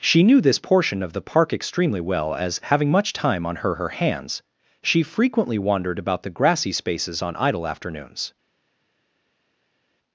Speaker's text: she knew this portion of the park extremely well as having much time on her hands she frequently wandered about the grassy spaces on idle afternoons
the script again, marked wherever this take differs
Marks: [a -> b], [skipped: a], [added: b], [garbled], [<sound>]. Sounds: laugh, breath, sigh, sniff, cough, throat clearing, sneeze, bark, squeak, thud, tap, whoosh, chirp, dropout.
she knew this portion of the park extremely well as having much time on her [added: her] hands she frequently wandered about the grassy spaces on idle afternoons